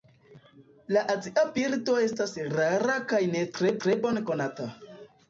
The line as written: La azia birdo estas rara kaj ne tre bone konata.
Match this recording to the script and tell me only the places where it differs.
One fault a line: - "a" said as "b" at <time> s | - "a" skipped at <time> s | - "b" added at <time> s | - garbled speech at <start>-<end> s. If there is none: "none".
- "tre" added at 3.9 s